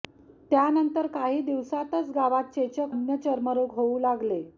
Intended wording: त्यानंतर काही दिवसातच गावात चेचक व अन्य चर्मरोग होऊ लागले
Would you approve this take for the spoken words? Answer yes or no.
no